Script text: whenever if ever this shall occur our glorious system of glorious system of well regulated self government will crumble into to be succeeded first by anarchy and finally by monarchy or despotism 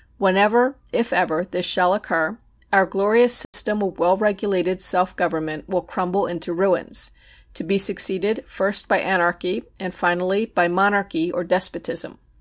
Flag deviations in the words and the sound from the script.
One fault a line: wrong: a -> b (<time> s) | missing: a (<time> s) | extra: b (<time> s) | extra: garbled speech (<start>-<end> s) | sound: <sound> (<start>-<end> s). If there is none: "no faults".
sound: dropout (3.4-3.5 s)
missing: glorious system of (4.0 s)
extra: ruins (6.5 s)